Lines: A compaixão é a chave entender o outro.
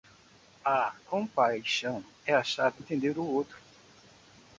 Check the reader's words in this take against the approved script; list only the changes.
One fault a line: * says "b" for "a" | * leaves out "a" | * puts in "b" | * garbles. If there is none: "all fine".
all fine